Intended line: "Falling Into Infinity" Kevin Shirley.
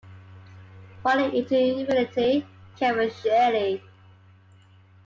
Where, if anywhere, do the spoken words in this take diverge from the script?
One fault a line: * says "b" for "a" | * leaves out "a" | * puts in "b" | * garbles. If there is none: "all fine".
all fine